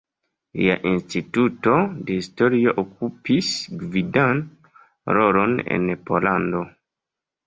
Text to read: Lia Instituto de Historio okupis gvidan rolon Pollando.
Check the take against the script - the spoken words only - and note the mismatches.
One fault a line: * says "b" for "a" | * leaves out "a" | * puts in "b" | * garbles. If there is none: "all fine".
* puts in "en"